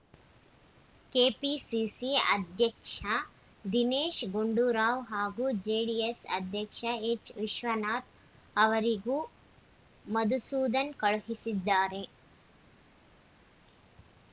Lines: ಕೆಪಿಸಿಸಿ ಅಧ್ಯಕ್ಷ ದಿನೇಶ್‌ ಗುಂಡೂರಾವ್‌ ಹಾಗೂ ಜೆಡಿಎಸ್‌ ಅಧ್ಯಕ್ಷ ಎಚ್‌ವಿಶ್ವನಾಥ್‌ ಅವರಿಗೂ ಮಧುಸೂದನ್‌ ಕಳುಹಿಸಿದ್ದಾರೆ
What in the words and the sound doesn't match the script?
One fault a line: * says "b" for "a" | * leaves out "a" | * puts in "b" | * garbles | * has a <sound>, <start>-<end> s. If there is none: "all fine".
all fine